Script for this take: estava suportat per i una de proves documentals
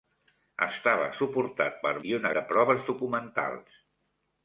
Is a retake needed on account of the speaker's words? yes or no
no